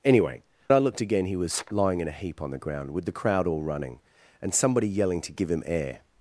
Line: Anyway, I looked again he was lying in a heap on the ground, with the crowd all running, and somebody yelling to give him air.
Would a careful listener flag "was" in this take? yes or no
no